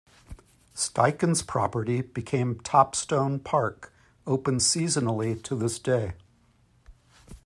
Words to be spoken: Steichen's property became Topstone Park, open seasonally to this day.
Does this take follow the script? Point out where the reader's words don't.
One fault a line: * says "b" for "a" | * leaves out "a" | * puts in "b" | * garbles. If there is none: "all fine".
all fine